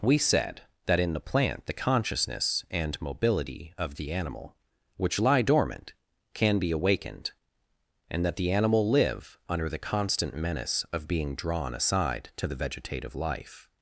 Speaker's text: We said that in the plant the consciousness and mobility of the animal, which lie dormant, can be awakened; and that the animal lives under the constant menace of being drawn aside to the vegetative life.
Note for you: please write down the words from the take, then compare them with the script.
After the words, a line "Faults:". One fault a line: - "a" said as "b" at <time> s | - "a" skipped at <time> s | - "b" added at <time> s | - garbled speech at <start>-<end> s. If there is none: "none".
We said that in the plant the consciousness and mobility of the animal, which lie dormant, can be awakened; and that the animal live under the constant menace of being drawn aside to the vegetative life.
Faults:
- "lives" said as "live" at 8.9 s